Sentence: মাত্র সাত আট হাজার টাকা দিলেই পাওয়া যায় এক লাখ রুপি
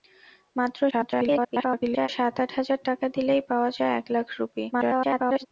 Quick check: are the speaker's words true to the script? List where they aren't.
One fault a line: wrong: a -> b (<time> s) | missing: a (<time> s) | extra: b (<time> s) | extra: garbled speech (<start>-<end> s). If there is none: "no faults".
extra: garbled speech (0.9-2.1 s)
extra: garbled speech (4.7-5.5 s)